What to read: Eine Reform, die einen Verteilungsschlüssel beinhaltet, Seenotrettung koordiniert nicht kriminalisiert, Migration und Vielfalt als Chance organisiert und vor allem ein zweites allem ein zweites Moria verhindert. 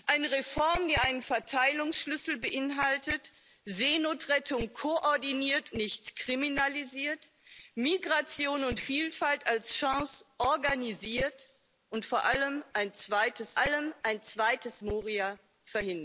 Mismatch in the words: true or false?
false